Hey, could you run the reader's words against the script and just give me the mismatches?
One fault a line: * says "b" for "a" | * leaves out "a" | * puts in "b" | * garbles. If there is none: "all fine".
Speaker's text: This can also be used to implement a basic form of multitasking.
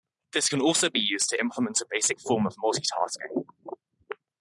all fine